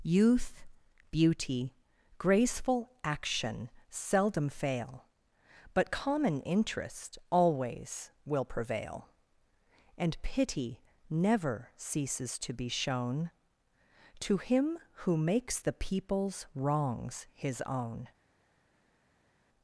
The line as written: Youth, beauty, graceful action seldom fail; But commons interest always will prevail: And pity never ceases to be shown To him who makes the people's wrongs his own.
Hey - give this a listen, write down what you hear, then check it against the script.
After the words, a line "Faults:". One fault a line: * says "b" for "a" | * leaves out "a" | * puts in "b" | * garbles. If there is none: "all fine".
Youth, beauty, graceful action seldom fail; But common interest always will prevail: And pity never ceases to be shown To him who makes the people's wrongs his own.
Faults:
* says "common" for "commons"